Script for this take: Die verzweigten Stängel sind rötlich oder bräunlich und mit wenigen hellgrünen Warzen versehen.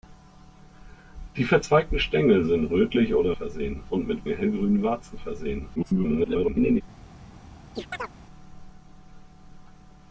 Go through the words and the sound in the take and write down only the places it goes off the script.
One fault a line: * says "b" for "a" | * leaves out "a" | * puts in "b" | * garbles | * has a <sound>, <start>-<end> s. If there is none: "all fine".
* says "versehen" for "bräunlich"
* leaves out "wenigen"
* garbles
* has a chirp, 7.7-8.1 s